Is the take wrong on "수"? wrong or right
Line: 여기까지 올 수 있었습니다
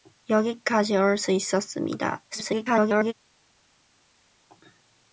right